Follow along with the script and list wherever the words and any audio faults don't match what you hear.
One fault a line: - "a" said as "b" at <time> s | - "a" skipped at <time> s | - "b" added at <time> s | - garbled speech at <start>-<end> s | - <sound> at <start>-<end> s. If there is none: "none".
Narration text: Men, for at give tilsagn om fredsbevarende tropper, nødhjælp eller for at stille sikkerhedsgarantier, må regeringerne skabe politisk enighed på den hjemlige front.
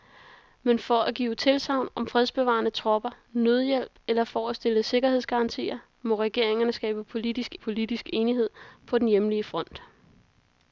- "politisk" added at 7.5 s